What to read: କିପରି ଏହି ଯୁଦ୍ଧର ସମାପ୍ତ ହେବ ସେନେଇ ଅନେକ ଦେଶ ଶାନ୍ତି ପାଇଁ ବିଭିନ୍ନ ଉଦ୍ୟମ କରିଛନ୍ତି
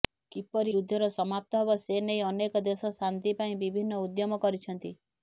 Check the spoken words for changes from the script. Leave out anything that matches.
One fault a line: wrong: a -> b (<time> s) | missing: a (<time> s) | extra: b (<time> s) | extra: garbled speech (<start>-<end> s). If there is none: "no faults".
missing: ଏହି (0.7 s)